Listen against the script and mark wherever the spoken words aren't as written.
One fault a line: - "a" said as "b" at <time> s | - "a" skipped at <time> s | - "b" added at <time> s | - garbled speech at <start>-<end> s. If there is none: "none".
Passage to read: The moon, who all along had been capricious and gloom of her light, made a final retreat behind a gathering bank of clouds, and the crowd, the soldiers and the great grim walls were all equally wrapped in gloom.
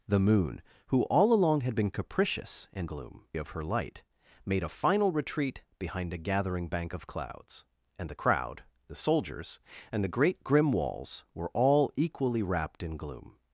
none